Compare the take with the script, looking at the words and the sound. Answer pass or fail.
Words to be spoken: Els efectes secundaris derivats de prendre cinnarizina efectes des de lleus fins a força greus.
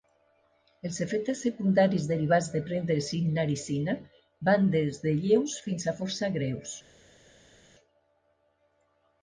fail